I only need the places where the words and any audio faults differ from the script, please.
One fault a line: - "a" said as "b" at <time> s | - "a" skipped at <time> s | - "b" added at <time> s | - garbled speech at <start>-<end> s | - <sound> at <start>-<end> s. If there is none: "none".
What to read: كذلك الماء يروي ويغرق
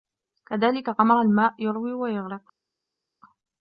- "غمر" added at 0.9 s